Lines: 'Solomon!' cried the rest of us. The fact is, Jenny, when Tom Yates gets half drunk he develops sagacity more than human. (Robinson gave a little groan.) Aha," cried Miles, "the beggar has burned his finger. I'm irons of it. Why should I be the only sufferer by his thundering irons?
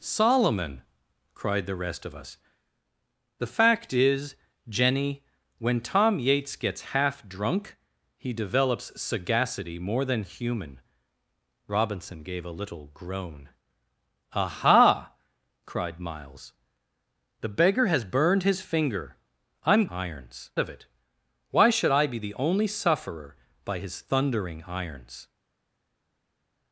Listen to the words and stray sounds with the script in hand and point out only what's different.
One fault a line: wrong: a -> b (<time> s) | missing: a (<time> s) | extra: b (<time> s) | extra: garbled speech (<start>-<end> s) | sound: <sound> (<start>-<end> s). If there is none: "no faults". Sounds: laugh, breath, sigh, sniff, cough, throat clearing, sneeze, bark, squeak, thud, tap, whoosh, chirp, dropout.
no faults